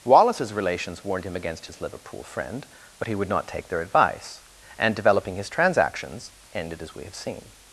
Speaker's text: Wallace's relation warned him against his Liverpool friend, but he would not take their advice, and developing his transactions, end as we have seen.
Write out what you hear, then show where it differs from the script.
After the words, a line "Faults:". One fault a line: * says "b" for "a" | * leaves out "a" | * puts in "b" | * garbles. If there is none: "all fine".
Wallace's relations warned him against his Liverpool friend, but he would not take their advice, and developing his transactions, ended as we have seen.
Faults:
* says "relations" for "relation"
* says "ended" for "end"